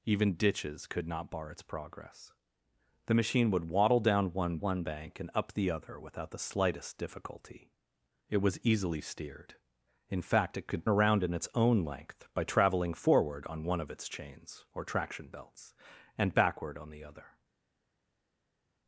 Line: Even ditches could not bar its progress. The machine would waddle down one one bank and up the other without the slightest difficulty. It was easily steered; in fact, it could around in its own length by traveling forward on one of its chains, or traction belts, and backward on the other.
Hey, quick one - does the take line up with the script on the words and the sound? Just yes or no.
yes